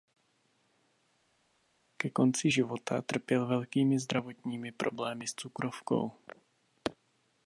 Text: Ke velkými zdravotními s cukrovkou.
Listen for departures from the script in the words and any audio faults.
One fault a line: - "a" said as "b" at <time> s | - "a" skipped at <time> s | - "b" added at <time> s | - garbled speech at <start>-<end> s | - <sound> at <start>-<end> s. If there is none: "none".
- "konci života trpěl" added at 2.1 s
- "problémy" added at 4.7 s